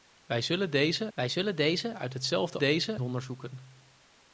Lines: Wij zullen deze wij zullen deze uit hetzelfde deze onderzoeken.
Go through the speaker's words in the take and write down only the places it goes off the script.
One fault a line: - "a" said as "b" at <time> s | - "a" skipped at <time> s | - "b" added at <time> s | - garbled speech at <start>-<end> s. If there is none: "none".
none